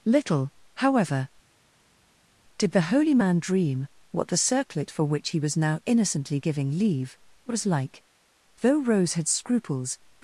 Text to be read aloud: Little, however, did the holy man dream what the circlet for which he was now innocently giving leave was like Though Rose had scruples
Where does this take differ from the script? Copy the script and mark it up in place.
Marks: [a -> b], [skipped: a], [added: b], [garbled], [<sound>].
Little, however, did the holy man dream what the circlet for which he was now innocently giving leave was like Though Rose had scruples